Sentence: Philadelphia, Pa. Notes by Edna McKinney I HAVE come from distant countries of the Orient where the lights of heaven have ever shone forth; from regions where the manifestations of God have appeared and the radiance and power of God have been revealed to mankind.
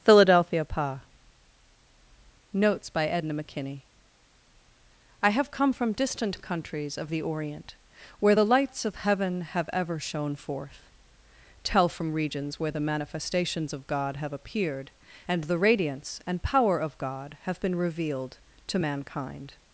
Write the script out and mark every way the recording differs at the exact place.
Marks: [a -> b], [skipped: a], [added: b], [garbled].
Philadelphia, Pa. Notes by Edna McKinney I HAVE come from distant countries of the Orient where the lights of heaven have ever shone forth; [added: tell] from regions where the manifestations of God have appeared and the radiance and power of God have been revealed to mankind.